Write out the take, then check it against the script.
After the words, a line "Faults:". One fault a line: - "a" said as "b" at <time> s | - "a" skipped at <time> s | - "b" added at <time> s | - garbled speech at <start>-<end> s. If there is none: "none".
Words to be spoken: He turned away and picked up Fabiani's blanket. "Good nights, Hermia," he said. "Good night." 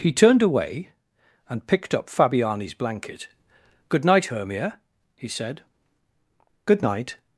He turned away and picked up Fabiani's blanket. "Good night, Hermia," he said. "Good night."
Faults:
- "nights" said as "night" at 4.0 s